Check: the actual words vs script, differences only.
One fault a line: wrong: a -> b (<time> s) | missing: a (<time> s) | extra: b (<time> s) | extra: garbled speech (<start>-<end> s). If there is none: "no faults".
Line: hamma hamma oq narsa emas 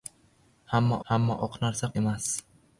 no faults